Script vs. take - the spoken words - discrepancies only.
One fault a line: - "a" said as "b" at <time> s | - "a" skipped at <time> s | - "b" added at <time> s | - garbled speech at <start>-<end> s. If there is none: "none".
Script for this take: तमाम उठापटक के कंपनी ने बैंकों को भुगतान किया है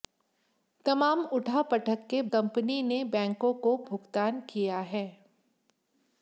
none